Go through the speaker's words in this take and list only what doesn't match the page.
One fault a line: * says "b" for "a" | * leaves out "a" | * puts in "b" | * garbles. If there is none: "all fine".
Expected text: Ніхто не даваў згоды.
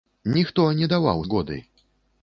all fine